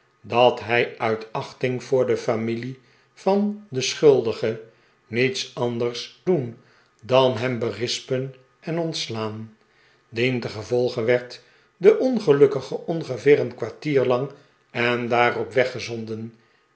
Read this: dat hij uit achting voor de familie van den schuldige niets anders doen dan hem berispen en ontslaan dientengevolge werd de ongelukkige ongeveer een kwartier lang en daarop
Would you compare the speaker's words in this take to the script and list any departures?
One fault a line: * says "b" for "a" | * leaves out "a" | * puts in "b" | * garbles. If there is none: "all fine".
all fine